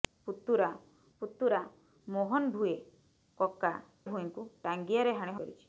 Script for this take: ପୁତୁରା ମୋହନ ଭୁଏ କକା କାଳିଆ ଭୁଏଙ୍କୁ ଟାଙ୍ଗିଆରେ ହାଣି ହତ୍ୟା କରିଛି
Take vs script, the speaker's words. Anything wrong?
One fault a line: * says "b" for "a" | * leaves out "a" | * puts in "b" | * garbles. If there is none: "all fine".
* puts in "ପୁତୁରା"
* leaves out "କାଳିଆ"
* leaves out "ହତ୍ୟା"